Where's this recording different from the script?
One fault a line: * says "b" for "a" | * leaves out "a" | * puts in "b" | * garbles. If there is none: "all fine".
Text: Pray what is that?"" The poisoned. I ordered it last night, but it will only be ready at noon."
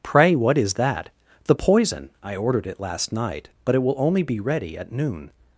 * says "poison" for "poisoned"